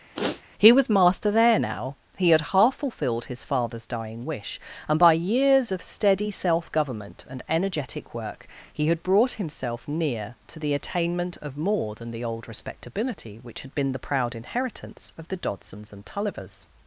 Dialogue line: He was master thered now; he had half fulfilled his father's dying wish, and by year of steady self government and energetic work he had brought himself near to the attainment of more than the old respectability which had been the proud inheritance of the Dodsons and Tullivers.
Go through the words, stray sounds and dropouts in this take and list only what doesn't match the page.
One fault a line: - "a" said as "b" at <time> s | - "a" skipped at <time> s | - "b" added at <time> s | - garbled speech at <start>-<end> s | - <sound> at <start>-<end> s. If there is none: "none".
- sniff at 0.1-0.4 s
- "thered" said as "there" at 1.3 s
- "year" said as "years" at 5.1 s